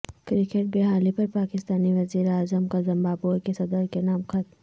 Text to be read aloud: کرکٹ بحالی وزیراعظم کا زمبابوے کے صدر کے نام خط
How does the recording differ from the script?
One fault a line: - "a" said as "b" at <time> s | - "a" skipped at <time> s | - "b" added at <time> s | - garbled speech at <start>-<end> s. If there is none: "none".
- "پر پاکستانی" added at 1.1 s